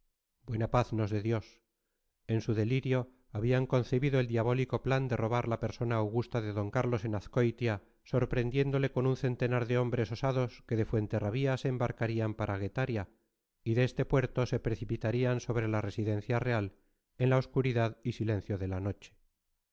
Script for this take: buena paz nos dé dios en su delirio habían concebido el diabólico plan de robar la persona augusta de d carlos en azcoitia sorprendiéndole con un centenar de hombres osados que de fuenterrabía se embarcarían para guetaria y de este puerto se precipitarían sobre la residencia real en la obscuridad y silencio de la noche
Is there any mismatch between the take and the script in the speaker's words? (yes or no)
no